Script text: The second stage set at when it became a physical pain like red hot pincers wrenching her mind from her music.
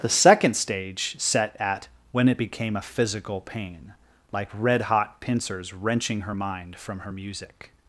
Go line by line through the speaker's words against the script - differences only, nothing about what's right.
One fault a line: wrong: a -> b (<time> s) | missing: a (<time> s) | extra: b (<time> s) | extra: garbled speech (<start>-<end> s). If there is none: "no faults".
no faults